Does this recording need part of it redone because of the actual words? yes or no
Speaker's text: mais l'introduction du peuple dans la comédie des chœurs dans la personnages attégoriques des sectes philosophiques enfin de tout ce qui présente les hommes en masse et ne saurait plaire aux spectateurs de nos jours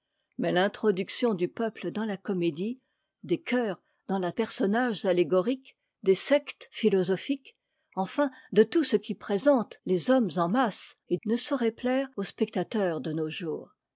no